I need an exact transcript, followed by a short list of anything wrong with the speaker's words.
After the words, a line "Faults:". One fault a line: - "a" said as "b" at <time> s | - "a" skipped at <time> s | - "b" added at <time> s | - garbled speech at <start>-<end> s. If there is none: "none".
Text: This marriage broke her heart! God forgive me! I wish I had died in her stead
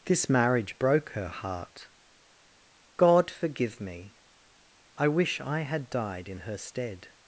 This marriage broke her heart! God forgive me! I wish I had died in her stead
Faults:
none